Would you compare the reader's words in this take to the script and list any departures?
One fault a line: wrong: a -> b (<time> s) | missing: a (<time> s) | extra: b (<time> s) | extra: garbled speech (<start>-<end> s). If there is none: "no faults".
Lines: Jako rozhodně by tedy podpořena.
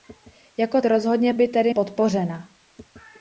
no faults